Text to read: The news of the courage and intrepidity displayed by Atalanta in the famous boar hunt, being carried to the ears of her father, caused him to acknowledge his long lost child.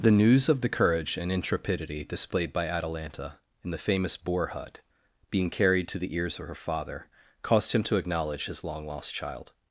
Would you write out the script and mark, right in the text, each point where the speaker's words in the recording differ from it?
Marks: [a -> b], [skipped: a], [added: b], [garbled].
The news of the courage and intrepidity displayed by Atalanta in the famous boar [hunt, -> hut] being carried to the ears of her father, caused him to acknowledge his long lost child.